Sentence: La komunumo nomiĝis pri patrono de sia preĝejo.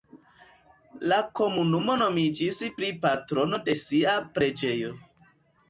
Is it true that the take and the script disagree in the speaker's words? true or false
false